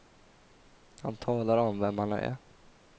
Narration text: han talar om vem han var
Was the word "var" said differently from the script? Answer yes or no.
yes